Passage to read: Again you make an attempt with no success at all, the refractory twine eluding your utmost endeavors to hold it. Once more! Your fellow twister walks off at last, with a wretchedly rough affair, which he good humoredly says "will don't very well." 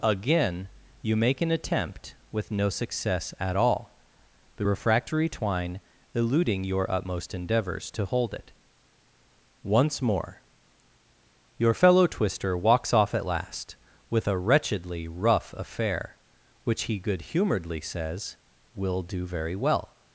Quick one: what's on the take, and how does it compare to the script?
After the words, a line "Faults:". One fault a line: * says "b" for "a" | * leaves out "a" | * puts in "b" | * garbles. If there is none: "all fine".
Again you make an attempt with no success at all, the refractory twine eluding your utmost endeavors to hold it. Once more! Your fellow twister walks off at last, with a wretchedly rough affair, which he good humoredly says "will do very well."
Faults:
* says "do" for "don't"